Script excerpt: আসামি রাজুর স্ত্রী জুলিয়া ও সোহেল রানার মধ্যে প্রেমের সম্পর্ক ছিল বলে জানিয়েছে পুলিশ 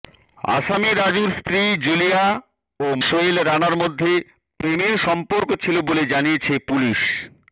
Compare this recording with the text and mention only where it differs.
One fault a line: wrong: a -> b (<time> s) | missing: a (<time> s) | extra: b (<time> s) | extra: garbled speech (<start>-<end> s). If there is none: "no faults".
no faults